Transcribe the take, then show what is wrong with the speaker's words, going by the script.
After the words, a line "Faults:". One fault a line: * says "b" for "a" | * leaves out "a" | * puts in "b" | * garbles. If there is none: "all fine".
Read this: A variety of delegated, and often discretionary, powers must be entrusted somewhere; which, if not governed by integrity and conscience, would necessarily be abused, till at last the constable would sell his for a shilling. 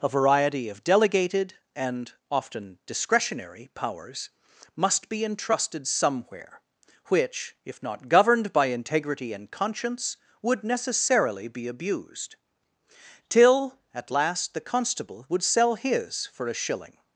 A variety of delegated, and often discretionary, powers must be entrusted somewhere; which, if not governed by integrity and conscience, would necessarily be abused, till at last the constable would sell his for a shilling.
Faults:
all fine